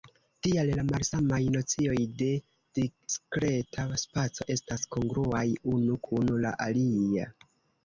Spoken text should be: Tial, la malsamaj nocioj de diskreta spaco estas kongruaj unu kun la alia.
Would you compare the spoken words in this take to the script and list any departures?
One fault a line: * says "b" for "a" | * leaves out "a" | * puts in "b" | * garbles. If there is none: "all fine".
all fine